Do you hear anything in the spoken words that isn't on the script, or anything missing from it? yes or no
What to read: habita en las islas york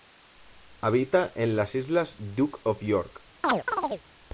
yes